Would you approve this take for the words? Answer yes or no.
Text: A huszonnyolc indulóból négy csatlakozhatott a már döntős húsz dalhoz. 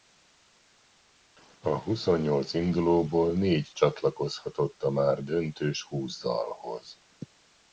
yes